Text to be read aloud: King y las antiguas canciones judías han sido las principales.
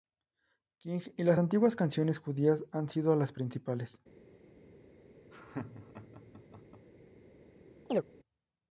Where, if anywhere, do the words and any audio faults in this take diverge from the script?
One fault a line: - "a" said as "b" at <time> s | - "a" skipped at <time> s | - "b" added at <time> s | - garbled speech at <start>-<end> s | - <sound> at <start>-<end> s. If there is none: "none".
- laugh at 5.3-6.9 s
- chirp at 7.9-8.0 s